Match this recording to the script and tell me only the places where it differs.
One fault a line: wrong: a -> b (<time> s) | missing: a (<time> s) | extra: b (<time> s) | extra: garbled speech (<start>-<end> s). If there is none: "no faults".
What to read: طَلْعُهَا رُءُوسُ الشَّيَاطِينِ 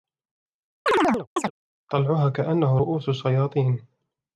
extra: كَأَنَّهُ (2.3 s)